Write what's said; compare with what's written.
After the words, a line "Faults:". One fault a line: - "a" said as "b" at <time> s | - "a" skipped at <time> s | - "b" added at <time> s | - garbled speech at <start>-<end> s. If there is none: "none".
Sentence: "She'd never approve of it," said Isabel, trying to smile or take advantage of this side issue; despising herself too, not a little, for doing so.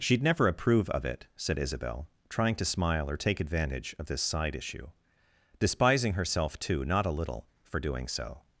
"She'd never approve of it," said Isabel, trying to smile or take advantage of this side issue; despising herself too, not a little, for doing so.
Faults:
none